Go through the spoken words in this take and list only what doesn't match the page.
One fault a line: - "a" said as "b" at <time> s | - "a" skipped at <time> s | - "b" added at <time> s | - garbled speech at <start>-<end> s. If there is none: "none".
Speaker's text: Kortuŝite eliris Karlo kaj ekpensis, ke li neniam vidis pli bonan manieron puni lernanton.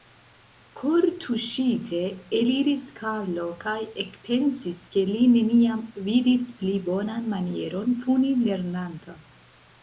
none